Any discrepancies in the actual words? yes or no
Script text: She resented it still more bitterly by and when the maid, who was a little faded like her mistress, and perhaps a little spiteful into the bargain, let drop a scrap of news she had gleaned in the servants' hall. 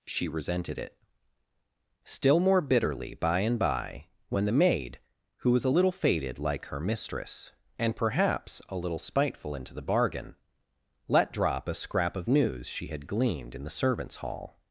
yes